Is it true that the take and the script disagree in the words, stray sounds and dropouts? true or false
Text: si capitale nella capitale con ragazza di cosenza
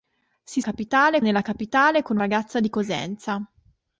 false